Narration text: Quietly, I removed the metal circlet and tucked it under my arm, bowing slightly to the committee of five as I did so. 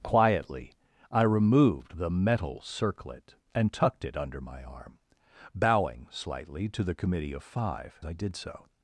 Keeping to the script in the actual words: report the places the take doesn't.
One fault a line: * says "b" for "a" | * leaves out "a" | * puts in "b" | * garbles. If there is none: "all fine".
* leaves out "as"